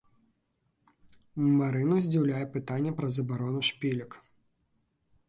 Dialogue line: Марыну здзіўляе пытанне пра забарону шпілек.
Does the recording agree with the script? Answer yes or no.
yes